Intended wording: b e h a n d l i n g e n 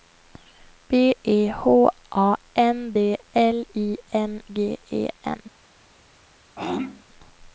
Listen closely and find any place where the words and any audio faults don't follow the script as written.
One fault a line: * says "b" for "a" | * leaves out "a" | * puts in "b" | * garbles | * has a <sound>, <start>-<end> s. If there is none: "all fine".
* has a throat clearing, 6.6-7.0 s